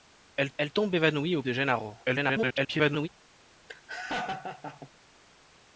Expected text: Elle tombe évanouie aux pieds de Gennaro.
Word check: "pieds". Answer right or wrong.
wrong